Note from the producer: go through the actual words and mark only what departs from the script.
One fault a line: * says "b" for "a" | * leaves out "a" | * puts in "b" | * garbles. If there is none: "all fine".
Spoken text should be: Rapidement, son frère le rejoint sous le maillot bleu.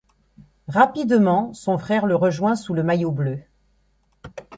all fine